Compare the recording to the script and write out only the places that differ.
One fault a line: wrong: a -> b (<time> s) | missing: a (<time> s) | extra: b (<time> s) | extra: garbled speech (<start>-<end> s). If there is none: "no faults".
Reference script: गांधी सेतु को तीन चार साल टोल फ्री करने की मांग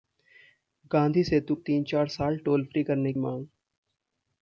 missing: को (1.6 s)
missing: की (3.1 s)